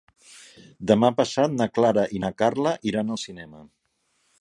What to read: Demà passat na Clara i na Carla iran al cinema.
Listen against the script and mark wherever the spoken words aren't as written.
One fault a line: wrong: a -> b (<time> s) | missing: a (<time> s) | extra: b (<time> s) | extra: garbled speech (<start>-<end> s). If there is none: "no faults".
no faults